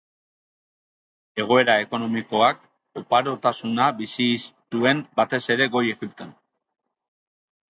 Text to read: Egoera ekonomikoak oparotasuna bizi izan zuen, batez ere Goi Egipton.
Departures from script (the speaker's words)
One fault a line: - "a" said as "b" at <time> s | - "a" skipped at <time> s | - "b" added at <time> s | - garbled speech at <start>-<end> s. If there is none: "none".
- "izan" skipped at 4.3 s